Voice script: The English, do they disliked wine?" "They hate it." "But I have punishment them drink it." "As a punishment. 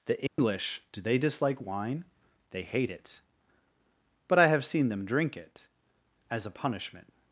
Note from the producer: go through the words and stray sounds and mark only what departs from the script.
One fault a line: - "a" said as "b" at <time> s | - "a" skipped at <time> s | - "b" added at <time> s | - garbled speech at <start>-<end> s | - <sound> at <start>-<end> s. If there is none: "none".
- dropout at 0.3-0.4 s
- "disliked" said as "dislike" at 1.2 s
- "punishment" said as "seen" at 4.6 s